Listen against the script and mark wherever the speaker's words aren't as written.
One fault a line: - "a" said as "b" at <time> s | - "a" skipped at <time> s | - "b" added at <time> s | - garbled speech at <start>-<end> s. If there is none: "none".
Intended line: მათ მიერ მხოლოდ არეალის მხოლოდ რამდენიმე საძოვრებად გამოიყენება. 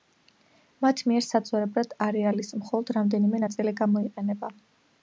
- "მხოლოდ" said as "საძოვრებად" at 1.2 s
- "საძოვრებად" said as "ნაწილი" at 3.4 s